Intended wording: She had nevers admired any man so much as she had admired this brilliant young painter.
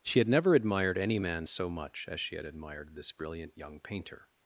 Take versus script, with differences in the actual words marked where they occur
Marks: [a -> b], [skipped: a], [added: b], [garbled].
She had [nevers -> never] admired any man so much as she had admired this brilliant young painter.